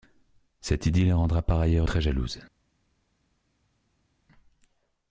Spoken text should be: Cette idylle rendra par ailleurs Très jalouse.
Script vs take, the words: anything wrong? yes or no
no